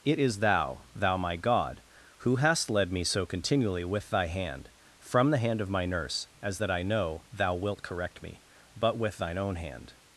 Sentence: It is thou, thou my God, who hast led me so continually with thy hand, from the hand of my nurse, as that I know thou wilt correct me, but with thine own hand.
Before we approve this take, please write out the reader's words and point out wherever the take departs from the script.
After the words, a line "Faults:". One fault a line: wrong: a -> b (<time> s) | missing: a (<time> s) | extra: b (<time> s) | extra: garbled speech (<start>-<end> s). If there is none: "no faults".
It is thou, thou my God, who hast led me so continually with thy hand, from the hand of my nurse, as that I know thou wilt correct me, but with thine own hand.
Faults:
no faults